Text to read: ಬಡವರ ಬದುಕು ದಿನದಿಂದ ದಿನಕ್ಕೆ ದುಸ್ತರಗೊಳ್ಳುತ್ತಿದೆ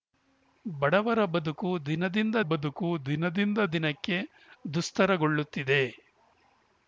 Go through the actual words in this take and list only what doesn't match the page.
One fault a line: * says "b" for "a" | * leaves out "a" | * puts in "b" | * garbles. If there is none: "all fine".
* puts in "ಬದುಕು ದಿನದಿಂದ"